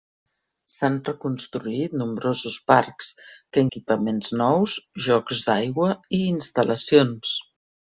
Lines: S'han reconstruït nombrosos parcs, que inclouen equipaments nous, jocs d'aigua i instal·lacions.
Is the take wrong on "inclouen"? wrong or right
wrong